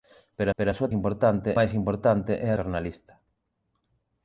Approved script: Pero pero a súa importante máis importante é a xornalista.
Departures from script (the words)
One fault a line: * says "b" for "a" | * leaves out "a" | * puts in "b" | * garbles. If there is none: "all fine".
all fine